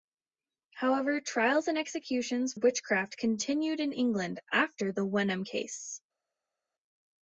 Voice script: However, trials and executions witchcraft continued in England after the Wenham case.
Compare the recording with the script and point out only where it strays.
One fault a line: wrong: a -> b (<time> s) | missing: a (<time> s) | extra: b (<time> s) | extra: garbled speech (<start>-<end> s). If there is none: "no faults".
no faults